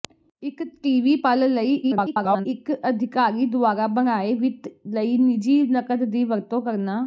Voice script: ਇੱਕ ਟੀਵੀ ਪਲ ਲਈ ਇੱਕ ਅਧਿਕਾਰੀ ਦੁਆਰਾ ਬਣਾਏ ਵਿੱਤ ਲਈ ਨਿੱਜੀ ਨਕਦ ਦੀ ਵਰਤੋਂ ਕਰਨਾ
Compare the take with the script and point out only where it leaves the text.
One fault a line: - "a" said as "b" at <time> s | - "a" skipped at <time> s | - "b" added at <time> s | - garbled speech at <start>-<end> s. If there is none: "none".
- garbled speech at 1.8-2.5 s